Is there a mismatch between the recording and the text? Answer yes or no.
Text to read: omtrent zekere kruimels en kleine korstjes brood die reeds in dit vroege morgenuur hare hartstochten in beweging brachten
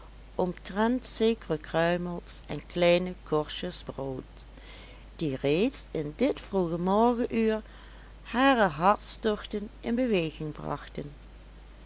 no